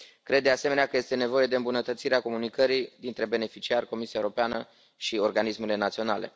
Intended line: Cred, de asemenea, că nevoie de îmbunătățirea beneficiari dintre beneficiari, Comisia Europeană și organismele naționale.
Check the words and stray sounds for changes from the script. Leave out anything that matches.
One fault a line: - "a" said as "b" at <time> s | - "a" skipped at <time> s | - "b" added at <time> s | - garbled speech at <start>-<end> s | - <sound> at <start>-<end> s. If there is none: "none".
- "este" added at 1.0 s
- "beneficiari" said as "comunicării" at 2.2 s